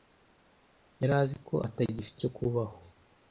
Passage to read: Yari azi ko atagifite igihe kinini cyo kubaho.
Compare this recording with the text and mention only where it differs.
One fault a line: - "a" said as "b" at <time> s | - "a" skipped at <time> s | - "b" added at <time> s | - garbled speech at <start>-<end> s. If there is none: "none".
- "igihe kinini" skipped at 2.2 s